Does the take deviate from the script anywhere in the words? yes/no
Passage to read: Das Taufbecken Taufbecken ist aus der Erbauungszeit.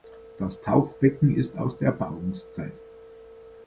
yes